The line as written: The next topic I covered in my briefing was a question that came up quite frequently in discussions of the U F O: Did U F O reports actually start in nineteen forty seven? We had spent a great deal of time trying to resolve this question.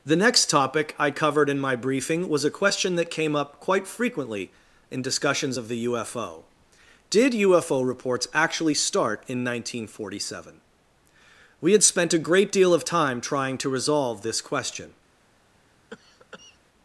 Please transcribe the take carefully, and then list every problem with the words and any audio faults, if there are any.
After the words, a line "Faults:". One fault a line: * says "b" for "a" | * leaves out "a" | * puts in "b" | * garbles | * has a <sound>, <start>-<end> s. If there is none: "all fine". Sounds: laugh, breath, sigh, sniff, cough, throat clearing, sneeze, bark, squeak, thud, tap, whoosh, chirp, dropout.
The next topic I covered in my briefing was a question that came up quite frequently in discussions of the U F O: Did U F O reports actually start in nineteen forty seven? We had spent a great deal of time trying to resolve this question.
Faults:
* has a cough, 15.9-16.6 s